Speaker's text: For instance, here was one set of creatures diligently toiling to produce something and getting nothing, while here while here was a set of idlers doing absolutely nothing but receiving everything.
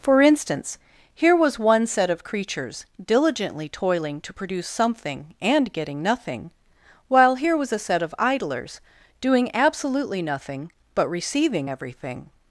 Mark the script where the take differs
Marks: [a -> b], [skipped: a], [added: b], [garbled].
For instance, here was one set of creatures diligently toiling to produce something and getting nothing, while here [skipped: while here] was a set of idlers doing absolutely nothing but receiving everything.